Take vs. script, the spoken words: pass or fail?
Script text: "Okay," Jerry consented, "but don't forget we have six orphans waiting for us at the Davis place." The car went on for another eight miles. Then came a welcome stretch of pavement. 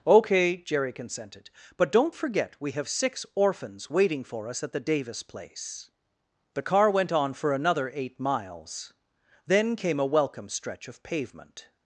pass